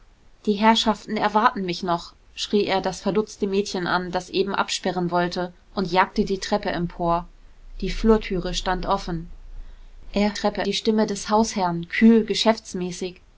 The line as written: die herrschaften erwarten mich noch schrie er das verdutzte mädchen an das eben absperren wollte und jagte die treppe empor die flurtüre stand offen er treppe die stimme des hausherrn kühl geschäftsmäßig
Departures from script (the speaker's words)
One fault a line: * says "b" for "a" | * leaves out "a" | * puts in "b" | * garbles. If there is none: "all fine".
all fine